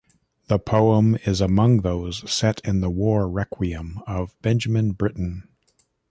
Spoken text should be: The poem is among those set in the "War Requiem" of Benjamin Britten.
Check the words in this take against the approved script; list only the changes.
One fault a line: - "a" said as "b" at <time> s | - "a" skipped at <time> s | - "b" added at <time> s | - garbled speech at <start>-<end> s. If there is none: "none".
none